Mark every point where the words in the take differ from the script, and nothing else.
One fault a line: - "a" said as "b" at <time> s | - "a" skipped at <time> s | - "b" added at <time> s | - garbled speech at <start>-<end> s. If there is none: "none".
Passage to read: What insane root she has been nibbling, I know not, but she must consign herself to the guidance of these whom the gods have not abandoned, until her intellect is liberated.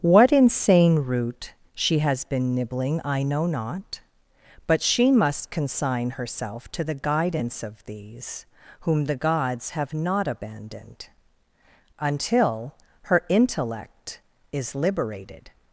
none